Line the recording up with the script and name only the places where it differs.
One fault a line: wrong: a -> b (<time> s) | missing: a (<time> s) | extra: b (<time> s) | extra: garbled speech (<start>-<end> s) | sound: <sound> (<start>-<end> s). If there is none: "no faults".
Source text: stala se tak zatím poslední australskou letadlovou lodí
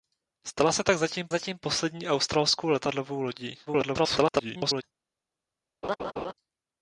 extra: zatím (1.3 s)
extra: garbled speech (3.7-4.8 s)
sound: laugh (5.8-6.3 s)